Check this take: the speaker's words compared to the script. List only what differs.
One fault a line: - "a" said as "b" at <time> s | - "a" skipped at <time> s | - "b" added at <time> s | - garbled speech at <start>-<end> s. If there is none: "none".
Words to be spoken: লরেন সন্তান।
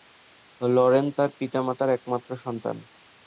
- "তার পিতামাতার একমাত্র" added at 1.2 s